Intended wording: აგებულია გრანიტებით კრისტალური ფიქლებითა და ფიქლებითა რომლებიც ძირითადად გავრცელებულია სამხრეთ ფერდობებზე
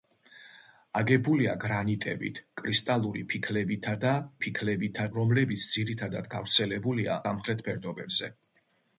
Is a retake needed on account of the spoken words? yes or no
no